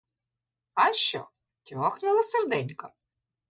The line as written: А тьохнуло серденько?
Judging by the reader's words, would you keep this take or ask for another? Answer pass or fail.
fail